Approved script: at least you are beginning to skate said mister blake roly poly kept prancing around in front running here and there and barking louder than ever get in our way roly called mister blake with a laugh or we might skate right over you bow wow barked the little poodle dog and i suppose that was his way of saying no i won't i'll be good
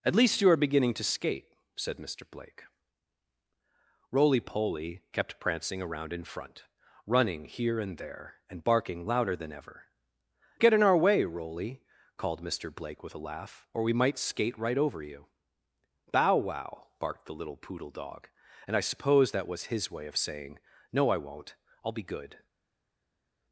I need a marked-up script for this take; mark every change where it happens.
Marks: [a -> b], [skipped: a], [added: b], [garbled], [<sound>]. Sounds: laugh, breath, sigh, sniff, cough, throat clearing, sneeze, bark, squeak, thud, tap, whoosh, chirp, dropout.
at least you are beginning to skate said mister blake roly poly kept prancing around in front running here and there and barking louder than ever get in our way roly called mister blake with a laugh or we might skate right over you bow wow barked the little poodle dog and i suppose that was his way of saying no i won't i'll be good